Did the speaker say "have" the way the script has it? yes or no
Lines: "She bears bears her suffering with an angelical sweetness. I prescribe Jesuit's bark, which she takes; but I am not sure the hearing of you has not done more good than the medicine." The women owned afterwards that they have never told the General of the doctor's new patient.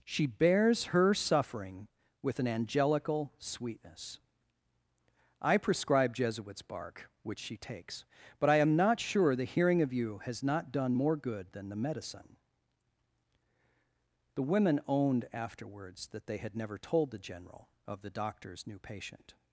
no